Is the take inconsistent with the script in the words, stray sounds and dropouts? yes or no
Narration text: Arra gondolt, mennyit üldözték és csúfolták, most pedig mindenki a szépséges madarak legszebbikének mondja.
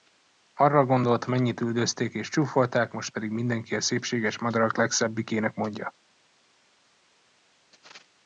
no